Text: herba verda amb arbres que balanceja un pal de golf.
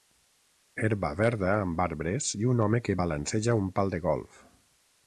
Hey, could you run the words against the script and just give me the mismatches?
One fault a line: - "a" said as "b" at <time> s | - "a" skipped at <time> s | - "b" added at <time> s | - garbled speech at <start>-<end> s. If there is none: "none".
- "i un home" added at 2.4 s